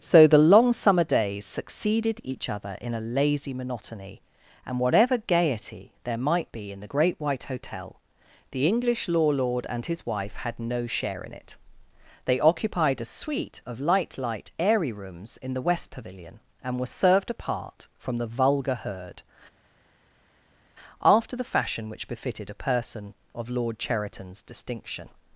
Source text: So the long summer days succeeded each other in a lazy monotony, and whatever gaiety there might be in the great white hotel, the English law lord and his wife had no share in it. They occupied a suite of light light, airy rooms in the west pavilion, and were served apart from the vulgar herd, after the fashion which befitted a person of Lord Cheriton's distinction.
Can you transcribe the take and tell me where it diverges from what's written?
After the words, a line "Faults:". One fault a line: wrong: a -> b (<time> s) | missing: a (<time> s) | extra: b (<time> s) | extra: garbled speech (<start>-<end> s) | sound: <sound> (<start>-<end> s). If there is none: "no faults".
So the long summer days succeeded each other in a lazy monotony, and whatever gaiety there might be in the great white hotel, the English law lord and his wife had no share in it. They occupied a suite of light light, airy rooms in the west pavilion, and were served apart from the vulgar herd, after the fashion which befitted a person of Lord Cheriton's distinction.
Faults:
no faults